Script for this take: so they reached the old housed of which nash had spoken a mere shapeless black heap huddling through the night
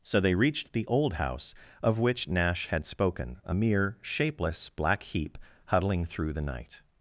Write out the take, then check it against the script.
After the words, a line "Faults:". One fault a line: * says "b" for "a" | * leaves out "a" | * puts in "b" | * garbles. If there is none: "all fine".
so they reached the old house of which nash had spoken a mere shapeless black heap huddling through the night
Faults:
* says "house" for "housed"